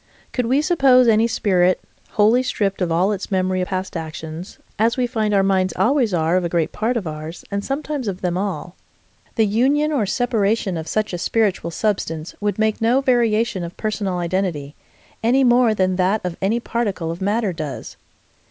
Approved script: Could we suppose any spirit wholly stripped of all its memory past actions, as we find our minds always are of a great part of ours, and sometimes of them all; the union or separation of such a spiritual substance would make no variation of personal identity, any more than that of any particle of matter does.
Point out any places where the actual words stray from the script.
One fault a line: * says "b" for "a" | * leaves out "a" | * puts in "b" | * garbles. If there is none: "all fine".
all fine